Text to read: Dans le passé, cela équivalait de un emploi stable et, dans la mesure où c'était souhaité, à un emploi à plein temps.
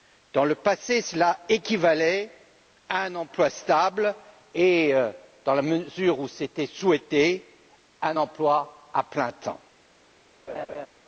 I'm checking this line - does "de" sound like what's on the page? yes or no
no